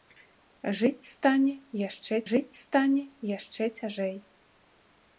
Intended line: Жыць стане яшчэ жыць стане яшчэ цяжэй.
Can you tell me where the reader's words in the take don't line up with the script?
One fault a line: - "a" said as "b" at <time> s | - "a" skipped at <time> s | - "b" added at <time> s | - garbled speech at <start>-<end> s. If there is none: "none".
none